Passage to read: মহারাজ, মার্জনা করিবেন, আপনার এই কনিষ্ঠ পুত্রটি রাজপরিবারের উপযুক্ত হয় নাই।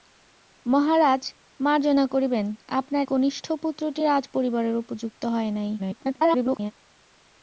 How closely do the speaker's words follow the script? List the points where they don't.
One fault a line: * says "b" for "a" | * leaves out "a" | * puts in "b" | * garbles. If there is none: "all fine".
* leaves out "এই"
* garbles